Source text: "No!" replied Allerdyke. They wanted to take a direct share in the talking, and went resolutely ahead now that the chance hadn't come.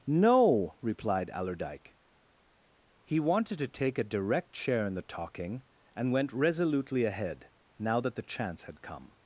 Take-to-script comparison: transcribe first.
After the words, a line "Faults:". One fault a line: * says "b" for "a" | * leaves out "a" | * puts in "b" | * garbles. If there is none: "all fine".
"No!" replied Allerdyke. He wanted to take a direct share in the talking, and went resolutely ahead now that the chance had come.
Faults:
* says "He" for "They"
* says "had" for "hadn't"